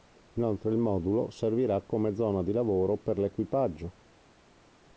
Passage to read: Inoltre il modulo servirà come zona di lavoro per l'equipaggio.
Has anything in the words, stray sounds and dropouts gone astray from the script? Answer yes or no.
no